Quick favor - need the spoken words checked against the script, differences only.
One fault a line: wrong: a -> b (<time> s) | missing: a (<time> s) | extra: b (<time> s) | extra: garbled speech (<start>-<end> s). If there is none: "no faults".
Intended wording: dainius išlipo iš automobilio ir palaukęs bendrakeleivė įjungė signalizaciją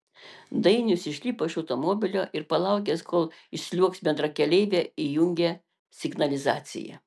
extra: kol išsliuogs (3.1 s)